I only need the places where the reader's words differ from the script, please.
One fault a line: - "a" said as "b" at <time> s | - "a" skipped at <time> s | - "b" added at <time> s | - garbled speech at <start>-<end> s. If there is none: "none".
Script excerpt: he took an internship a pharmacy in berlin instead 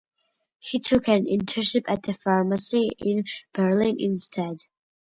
- "at" added at 1.9 s